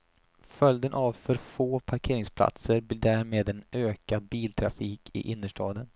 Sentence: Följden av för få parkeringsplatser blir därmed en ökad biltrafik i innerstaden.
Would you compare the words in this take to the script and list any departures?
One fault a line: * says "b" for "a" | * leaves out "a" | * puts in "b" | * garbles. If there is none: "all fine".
all fine